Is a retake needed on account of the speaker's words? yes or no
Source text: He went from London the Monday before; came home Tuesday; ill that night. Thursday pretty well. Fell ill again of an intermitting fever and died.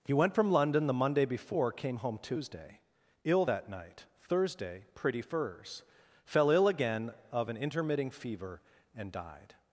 yes